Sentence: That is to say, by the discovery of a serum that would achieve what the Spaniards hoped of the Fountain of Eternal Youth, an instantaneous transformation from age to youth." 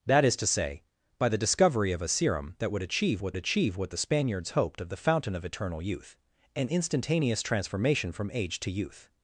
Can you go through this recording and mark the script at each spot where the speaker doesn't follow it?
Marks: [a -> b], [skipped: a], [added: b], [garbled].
That is to say, by the discovery of a serum that would achieve what [added: achieve what] the Spaniards hoped of the Fountain of Eternal Youth, an instantaneous transformation from age to youth."